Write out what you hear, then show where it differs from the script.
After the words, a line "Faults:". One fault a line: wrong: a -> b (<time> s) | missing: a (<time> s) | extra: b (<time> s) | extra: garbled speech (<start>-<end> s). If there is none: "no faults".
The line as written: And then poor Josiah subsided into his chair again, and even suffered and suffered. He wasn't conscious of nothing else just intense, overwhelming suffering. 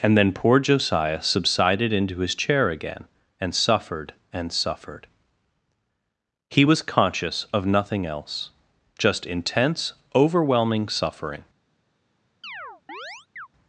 And then poor Josiah subsided into his chair again, and suffered and suffered. He was conscious of nothing else just intense, overwhelming suffering.
Faults:
missing: even (3.5 s)
wrong: wasn't -> was (6.6 s)